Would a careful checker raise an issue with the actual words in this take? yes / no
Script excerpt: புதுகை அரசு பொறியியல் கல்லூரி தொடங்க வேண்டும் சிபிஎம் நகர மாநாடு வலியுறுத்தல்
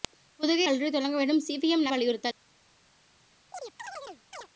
yes